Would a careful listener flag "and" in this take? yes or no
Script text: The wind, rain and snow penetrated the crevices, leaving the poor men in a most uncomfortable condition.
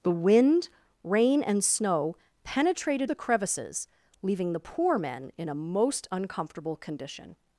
no